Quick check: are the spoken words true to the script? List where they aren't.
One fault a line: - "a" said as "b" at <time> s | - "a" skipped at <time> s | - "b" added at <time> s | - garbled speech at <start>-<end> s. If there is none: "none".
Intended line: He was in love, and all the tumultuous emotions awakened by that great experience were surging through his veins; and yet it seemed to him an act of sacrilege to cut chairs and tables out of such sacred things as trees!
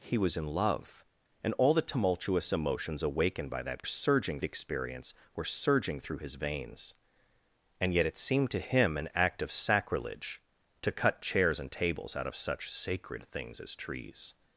- "great" said as "surging" at 3.9 s